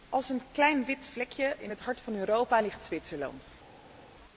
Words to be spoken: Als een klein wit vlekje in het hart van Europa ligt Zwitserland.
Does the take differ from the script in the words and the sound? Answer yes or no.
no